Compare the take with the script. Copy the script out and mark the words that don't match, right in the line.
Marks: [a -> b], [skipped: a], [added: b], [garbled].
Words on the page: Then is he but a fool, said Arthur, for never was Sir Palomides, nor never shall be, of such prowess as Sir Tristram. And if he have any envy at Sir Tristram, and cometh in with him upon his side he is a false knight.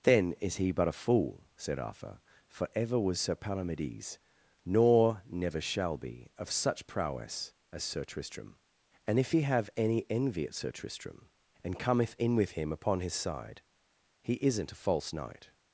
Then is he but a fool, said Arthur, for [never -> ever] was Sir Palomides, nor never shall be, of such prowess as Sir Tristram. And if he have any envy at Sir Tristram, and cometh in with him upon his side he [is -> isn't] a false knight.